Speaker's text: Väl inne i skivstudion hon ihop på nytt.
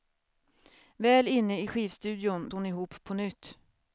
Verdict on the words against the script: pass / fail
pass